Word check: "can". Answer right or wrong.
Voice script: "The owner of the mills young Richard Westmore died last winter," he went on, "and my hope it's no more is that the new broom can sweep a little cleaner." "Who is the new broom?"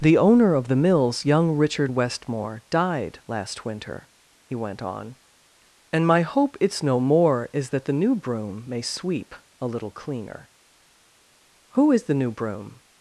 wrong